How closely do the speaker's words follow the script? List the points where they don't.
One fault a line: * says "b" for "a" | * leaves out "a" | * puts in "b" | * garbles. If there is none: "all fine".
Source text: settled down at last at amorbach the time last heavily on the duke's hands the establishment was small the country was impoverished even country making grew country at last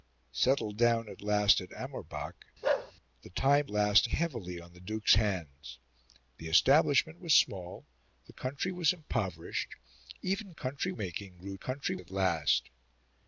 all fine